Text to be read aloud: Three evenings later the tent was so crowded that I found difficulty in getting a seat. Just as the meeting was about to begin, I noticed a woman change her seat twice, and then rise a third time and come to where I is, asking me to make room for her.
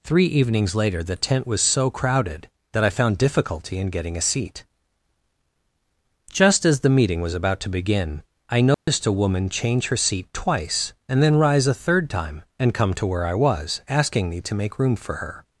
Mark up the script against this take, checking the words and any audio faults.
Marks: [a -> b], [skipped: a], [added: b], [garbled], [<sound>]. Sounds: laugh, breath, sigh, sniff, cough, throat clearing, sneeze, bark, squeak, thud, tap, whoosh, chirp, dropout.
Three evenings later the tent was so crowded that I found difficulty in getting a seat. Just as the meeting was about to begin, I noticed [dropout] a woman change her seat twice, and then rise a third time and come to where I [is, -> was] asking me to make room for her.